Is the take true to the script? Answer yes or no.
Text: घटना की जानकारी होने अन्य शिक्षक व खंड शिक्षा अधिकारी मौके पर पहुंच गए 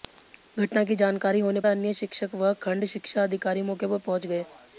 yes